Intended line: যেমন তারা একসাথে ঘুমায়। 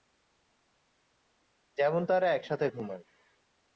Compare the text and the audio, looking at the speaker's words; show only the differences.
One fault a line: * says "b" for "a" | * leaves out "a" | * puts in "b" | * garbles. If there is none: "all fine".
all fine